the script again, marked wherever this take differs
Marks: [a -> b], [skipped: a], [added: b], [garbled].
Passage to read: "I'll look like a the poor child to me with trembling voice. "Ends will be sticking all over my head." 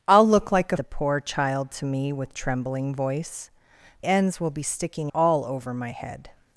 "I'll look like a the poor child to me with trembling voice. "Ends will be sticking all over my head."